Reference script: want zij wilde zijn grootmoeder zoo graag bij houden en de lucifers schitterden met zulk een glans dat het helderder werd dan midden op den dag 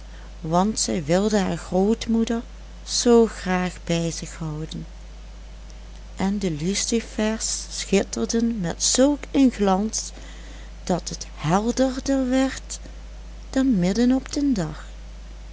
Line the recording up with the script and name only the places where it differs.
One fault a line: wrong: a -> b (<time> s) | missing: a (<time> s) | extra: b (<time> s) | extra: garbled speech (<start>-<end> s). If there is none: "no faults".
wrong: zijn -> haar (1.4 s)
extra: zich (4.1 s)